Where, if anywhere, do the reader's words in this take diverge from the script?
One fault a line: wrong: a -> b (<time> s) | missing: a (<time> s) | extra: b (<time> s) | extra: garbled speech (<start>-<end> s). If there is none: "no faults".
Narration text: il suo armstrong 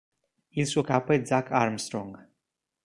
extra: capo è zach (0.8 s)